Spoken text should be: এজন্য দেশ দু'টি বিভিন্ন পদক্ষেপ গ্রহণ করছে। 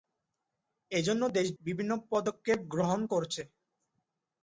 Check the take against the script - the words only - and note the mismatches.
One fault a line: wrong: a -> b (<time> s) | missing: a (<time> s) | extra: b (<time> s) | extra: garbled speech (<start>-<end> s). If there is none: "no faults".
missing: দু'টি (1.5 s)